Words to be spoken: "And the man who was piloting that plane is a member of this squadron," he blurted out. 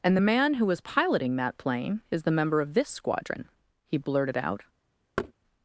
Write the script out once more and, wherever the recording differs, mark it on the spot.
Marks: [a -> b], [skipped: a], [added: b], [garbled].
"And the man who was piloting that plane is [a -> the] member of this squadron," he blurted out.